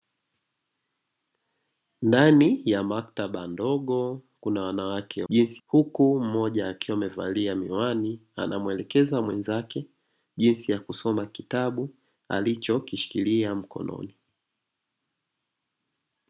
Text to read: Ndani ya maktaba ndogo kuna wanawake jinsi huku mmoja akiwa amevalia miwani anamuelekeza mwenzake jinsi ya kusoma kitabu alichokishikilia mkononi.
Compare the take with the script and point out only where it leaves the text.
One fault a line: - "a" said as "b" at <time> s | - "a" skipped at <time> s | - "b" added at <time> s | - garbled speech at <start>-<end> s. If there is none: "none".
none